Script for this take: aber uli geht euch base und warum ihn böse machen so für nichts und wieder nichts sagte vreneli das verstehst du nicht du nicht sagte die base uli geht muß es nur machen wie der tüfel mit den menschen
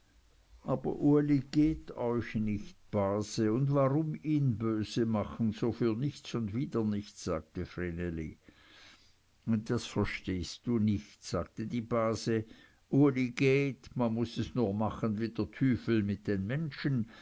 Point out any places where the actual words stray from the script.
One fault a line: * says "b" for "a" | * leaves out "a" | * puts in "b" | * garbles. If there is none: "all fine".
* puts in "nicht"
* leaves out "du nicht"
* puts in "man"